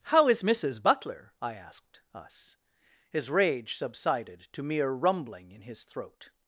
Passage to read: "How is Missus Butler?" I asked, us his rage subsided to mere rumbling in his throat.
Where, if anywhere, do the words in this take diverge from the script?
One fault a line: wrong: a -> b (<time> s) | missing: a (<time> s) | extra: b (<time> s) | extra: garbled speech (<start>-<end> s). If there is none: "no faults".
no faults